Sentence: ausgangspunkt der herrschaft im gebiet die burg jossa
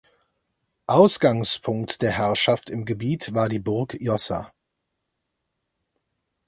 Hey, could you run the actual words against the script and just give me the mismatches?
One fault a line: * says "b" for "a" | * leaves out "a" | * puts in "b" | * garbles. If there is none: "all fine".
* puts in "war"